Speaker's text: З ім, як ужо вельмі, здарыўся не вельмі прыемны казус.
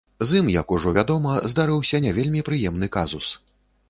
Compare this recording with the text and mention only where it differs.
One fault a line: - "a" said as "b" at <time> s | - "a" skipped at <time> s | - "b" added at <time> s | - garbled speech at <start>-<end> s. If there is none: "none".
- "вельмі" said as "вядома" at 1.0 s